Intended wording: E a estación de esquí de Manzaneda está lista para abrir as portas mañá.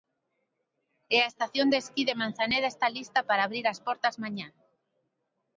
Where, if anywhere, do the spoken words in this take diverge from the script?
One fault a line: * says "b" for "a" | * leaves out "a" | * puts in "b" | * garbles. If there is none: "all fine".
all fine